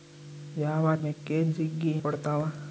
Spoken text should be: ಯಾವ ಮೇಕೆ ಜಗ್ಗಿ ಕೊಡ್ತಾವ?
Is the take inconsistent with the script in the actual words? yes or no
no